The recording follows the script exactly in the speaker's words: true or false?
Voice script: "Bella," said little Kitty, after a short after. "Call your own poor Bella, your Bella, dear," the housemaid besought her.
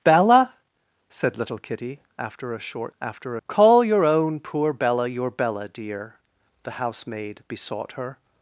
true